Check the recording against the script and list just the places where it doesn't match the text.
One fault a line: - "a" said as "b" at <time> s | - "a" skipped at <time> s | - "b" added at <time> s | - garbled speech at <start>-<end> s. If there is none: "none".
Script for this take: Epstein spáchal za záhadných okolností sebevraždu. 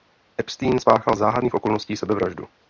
- "za" skipped at 1.1 s